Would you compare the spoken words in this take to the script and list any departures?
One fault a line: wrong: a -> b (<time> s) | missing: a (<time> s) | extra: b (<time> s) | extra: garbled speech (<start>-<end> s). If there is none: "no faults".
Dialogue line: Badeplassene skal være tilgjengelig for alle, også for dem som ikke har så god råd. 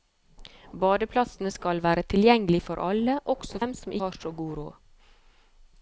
missing: for (3.6 s)
missing: ikke (3.9 s)